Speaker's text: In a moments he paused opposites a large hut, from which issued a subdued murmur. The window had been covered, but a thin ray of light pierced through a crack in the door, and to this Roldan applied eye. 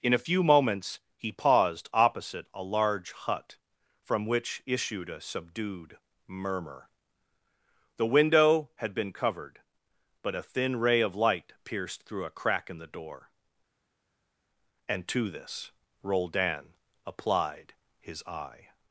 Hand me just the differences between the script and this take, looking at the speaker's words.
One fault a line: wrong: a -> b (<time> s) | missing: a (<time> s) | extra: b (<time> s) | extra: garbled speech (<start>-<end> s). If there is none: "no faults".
extra: few (0.3 s)
wrong: opposites -> opposite (1.9 s)
extra: his (18.0 s)